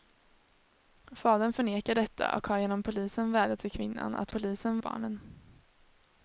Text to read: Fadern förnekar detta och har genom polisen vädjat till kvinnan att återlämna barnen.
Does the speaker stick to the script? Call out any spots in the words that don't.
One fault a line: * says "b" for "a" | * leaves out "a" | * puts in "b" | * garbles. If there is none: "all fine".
* says "polisen" for "återlämna"